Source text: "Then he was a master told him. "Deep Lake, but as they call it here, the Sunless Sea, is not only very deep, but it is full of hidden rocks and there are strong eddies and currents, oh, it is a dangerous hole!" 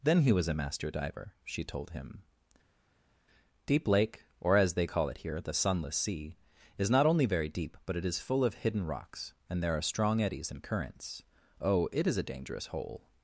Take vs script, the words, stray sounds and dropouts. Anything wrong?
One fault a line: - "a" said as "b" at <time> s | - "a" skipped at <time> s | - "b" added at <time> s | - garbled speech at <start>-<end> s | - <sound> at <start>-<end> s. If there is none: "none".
- "diver she" added at 0.9 s
- "but" said as "or" at 4.4 s